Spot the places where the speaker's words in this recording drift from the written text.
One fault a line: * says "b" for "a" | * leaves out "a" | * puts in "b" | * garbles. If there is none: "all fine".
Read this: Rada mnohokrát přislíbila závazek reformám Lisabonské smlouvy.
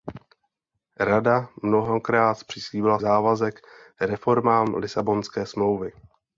all fine